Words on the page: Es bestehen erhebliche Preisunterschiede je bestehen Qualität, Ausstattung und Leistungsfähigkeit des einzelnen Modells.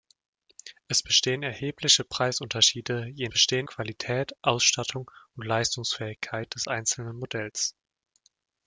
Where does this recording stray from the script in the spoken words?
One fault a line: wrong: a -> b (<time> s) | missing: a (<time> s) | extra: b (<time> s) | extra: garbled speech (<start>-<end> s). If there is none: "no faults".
no faults